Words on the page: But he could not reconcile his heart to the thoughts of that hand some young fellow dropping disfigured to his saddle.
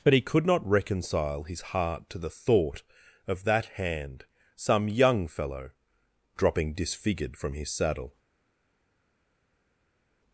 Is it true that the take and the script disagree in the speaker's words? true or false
true